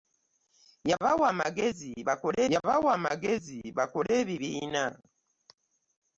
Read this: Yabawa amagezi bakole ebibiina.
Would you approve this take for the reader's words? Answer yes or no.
no